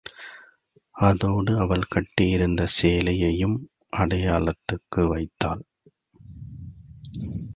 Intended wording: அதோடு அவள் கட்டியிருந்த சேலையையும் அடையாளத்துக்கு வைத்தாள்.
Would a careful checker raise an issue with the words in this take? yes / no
no